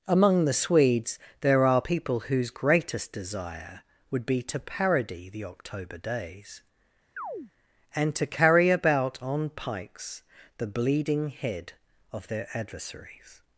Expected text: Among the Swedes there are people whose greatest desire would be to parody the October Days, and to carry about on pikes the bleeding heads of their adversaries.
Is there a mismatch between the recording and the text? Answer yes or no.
yes